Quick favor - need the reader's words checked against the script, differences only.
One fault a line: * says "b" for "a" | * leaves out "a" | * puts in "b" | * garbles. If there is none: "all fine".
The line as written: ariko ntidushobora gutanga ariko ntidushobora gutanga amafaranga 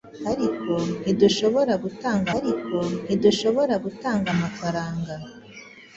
all fine